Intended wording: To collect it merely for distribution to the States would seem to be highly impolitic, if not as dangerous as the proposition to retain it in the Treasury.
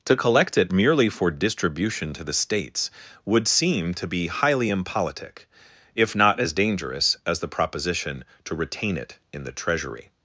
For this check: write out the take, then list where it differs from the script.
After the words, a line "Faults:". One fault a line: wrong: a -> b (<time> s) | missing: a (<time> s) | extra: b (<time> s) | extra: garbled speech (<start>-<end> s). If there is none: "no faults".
To collect it merely for distribution to the States would seem to be highly impolitic, if not as dangerous as the proposition to retain it in the Treasury.
Faults:
no faults